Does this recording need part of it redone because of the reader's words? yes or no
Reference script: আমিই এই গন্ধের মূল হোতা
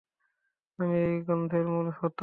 no